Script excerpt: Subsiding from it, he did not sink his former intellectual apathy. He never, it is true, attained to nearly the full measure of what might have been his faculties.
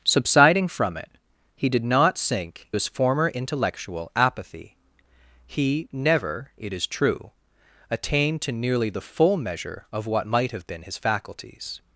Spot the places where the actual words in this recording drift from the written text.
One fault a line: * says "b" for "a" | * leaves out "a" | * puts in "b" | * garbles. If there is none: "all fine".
all fine